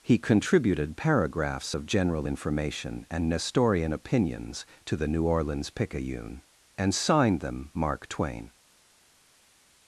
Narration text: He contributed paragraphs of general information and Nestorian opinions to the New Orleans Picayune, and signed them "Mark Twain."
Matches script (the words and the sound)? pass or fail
pass